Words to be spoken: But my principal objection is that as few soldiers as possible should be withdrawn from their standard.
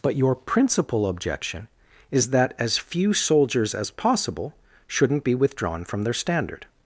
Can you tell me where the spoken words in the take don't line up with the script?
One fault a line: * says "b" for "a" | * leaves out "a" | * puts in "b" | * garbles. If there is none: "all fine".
* says "your" for "my"
* says "shouldn't" for "should"